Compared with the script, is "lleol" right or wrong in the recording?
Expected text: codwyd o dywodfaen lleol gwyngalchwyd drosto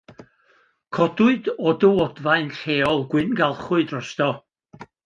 right